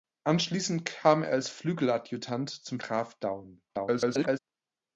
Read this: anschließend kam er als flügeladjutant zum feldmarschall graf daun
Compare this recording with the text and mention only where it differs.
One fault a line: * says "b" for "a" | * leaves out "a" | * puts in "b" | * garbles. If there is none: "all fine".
* leaves out "feldmarschall"
* garbles